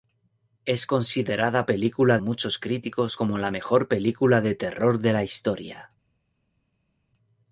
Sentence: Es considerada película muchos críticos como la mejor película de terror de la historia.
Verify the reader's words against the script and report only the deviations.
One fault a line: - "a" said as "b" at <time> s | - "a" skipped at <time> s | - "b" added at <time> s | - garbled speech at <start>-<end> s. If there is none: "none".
none